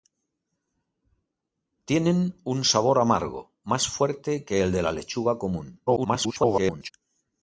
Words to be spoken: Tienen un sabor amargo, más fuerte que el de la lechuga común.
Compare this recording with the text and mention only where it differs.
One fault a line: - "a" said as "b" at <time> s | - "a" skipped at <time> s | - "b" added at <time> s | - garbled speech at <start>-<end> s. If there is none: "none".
- garbled speech at 5.9-6.9 s